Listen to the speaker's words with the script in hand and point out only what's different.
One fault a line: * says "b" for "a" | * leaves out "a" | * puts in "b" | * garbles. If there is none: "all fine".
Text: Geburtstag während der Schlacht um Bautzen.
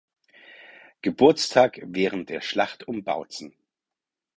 all fine